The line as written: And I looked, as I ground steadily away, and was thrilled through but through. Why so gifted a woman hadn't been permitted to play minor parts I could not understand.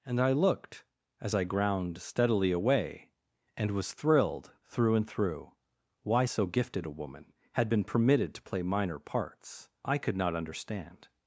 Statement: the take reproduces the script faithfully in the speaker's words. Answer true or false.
false